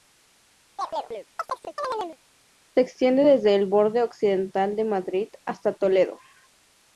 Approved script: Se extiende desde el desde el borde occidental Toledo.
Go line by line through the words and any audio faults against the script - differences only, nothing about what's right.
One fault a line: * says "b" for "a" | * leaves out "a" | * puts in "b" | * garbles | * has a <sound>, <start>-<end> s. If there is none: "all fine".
* has a chirp, 0.8-2.2 s
* says "borde occidental de Madrid hasta" for "desde el borde occidental"